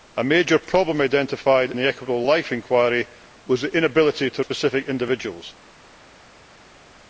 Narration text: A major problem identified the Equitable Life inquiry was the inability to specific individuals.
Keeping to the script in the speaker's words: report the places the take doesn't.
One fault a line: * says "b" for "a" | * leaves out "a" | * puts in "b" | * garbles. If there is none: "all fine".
all fine